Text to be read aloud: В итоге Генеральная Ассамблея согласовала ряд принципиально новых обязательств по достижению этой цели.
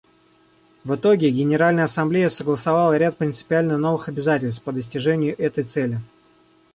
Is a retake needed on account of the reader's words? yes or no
no